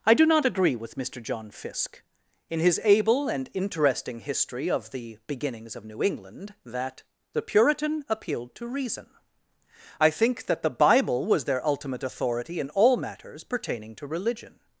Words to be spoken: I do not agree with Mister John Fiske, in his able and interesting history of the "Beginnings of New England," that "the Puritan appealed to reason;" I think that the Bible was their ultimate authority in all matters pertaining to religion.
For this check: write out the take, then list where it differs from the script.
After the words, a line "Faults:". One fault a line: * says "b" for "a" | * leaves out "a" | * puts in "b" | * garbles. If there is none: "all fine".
I do not agree with Mister John Fiske, in his able and interesting history of the "Beginnings of New England," that "the Puritan appealed to reason;" I think that the Bible was their ultimate authority in all matters pertaining to religion.
Faults:
all fine